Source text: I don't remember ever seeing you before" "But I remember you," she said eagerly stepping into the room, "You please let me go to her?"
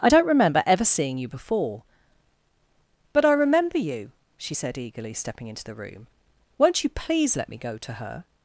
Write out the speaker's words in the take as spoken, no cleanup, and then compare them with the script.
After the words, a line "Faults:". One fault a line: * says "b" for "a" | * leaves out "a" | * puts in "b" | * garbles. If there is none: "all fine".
I don't remember ever seeing you before" "But I remember you," she said eagerly stepping into the room, "Won't you please let me go to her?"
Faults:
* puts in "Won't"